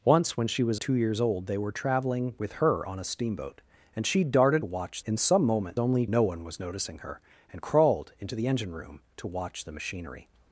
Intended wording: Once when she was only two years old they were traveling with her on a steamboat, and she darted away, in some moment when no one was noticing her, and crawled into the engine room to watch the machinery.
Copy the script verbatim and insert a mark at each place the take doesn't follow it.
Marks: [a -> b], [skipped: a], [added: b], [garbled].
Once when she was [skipped: only] two years old they were traveling with her on a steamboat, and she darted [away, -> watch] in some moment [when -> only] no one was noticing her, and crawled into the engine room to watch the machinery.